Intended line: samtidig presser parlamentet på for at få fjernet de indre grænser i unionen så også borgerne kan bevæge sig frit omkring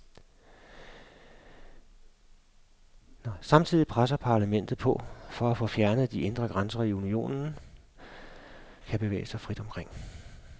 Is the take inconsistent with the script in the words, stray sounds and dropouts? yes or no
yes